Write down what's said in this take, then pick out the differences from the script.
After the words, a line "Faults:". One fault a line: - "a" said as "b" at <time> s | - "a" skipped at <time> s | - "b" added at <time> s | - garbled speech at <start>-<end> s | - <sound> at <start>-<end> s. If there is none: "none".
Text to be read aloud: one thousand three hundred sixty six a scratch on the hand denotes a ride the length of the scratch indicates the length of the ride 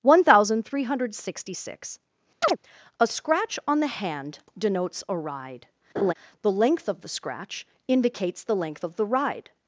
one thousand three hundred sixty six a scratch on the hand denotes a ride the length of the scratch indicates the length of the ride
Faults:
- chirp at 2.4-2.6 s
- laugh at 6.0-6.1 s